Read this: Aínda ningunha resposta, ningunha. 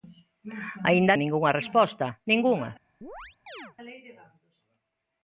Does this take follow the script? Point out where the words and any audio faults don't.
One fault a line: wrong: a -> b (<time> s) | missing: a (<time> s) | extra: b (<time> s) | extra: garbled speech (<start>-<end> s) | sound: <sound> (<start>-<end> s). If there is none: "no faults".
sound: chirp (3.0-3.8 s)